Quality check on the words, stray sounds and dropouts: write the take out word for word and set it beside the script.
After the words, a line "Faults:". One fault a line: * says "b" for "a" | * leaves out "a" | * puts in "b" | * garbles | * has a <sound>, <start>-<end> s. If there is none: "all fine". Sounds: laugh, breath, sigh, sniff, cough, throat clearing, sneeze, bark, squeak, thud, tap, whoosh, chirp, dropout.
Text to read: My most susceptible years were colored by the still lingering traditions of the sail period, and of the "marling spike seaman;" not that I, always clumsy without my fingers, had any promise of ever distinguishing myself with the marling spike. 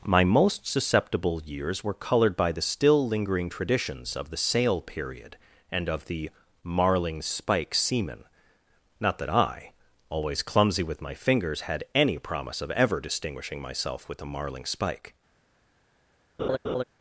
My most susceptible years were colored by the still lingering traditions of the sail period, and of the "marling spike seaman;" not that I, always clumsy with my fingers, had any promise of ever distinguishing myself with the marling spike.
Faults:
* says "with" for "without"
* has a laugh, 16.4-16.8 s